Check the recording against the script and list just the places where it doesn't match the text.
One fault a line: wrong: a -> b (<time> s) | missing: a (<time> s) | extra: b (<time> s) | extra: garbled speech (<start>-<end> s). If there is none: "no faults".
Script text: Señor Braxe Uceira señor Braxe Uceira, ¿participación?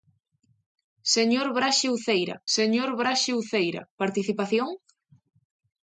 no faults